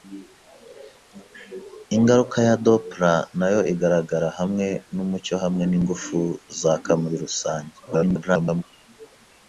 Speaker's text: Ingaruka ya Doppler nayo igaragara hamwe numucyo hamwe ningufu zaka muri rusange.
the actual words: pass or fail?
fail